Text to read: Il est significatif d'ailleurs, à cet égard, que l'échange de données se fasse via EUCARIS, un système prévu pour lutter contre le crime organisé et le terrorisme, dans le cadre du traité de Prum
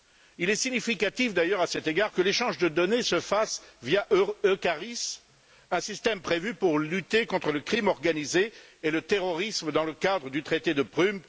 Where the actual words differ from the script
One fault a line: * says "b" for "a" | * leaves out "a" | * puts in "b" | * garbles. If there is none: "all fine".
all fine